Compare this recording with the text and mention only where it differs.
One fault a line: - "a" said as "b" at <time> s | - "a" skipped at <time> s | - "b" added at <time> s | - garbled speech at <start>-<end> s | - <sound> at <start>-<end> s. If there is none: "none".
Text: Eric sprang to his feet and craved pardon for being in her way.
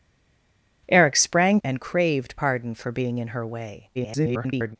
- "to his feet" skipped at 1.6 s
- garbled speech at 3.9-4.8 s